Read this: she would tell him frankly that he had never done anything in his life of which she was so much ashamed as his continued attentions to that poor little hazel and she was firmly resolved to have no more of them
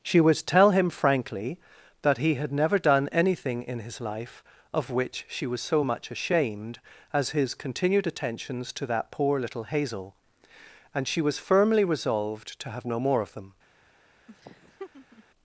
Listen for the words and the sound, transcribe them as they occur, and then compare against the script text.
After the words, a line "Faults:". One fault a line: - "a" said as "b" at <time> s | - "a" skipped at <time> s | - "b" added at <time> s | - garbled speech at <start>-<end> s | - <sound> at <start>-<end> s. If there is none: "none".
she would tell him frankly that he had never done anything in his life of which she was so much ashamed as his continued attentions to that poor little hazel and she was firmly resolved to have no more of them
Faults:
- laugh at 14.3-15.2 s